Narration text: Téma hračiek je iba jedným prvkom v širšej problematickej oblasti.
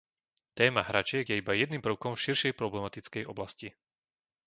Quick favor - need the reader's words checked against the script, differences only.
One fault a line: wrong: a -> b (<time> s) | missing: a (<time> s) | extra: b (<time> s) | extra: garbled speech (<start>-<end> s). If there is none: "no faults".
no faults